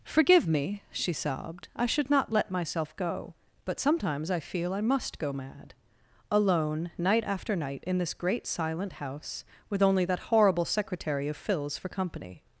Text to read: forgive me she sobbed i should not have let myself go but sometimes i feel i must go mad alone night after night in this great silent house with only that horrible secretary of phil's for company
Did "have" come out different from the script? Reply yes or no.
yes